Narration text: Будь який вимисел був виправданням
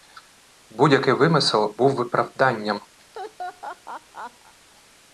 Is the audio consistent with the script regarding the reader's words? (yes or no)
yes